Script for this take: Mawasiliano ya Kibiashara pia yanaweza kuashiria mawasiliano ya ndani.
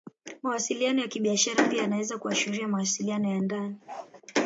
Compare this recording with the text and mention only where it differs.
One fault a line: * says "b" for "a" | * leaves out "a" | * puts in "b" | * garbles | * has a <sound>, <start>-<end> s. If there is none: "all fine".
* has a bark, 3.9-4.1 s